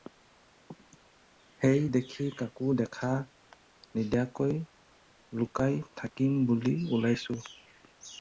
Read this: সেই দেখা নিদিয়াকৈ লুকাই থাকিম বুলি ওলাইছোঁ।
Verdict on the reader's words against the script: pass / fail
fail